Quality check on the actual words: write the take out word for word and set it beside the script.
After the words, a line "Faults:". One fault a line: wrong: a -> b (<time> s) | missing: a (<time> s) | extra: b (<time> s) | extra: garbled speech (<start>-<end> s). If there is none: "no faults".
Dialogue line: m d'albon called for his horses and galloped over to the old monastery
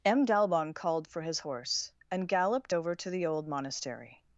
m d'albon called for his horse and galloped over to the old monastery
Faults:
wrong: horses -> horse (1.4 s)